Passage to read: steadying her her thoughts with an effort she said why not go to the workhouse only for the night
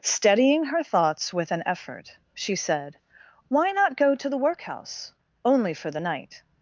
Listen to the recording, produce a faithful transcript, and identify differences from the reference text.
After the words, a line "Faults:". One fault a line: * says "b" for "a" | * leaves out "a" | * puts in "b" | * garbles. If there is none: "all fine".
steadying her thoughts with an effort she said why not go to the workhouse only for the night
Faults:
* leaves out "her"